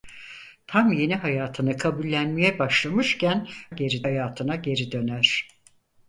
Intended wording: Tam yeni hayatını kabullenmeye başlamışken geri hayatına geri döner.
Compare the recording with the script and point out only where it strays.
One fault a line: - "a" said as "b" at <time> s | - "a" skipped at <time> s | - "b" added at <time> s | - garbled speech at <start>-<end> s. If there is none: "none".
none